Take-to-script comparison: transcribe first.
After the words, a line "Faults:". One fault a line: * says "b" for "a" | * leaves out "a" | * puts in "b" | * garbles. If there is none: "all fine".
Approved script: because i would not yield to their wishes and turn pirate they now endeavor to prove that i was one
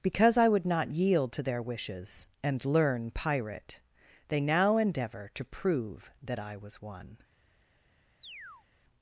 because i would not yield to their wishes and learn pirate they now endeavor to prove that i was one
Faults:
* says "learn" for "turn"